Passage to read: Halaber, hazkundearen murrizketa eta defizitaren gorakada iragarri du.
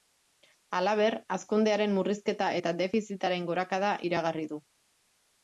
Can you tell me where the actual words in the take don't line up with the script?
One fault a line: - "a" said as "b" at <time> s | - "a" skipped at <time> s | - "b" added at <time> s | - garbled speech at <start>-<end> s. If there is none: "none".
none